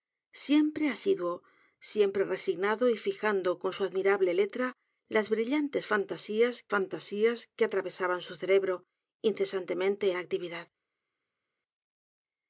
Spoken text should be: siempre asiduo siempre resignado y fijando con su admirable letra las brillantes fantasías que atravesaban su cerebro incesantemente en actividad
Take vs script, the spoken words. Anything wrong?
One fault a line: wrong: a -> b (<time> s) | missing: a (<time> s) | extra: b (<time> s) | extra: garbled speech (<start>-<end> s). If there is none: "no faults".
extra: fantasías (6.7 s)
missing: en (10.1 s)